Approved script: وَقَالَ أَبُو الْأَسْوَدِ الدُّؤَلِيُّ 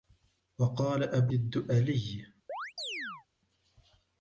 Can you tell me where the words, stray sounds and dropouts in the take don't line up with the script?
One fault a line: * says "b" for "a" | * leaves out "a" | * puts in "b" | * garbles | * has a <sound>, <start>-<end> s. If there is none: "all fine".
* leaves out "الْأَسْوَدِ"
* has a chirp, 2.5-3.3 s